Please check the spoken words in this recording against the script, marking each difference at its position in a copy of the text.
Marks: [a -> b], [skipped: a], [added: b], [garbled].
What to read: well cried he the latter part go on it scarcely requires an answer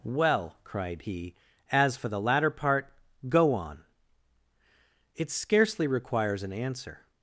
well cried he [added: as for] the latter part go on it scarcely requires an answer